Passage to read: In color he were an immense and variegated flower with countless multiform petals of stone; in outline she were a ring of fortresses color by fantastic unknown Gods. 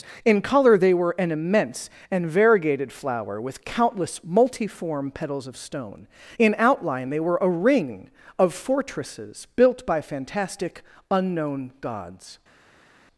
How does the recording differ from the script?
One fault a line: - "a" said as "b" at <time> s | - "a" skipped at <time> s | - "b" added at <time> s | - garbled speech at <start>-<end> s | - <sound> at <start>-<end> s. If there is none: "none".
- "he" said as "they" at 0.8 s
- "she" said as "they" at 7.1 s
- "color" said as "built" at 9.6 s